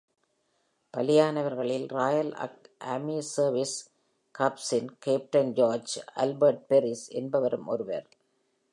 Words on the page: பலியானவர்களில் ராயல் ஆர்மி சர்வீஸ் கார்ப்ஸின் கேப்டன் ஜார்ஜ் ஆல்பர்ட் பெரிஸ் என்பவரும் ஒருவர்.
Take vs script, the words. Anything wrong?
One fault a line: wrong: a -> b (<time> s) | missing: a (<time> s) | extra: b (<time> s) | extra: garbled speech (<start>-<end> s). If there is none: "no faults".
no faults